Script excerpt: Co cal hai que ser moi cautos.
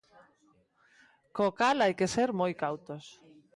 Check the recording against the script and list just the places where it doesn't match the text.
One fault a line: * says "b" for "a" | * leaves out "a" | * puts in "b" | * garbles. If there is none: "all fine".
all fine